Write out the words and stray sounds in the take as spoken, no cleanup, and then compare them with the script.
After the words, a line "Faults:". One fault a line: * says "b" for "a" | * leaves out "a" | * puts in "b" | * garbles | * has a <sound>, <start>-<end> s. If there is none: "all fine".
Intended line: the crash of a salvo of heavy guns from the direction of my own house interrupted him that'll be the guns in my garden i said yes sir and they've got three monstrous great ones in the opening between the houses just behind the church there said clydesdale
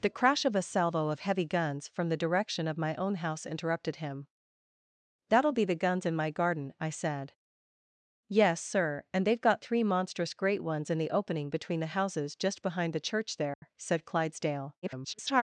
the crash of a salvo of heavy guns from the direction of my own house interrupted him that'll be the guns in my garden i said yes sir and they've got three monstrous great ones in the opening between the houses just behind the church there said clydesdale [garbled]
Faults:
* has a dropout, 13.5-13.6 s
* garbles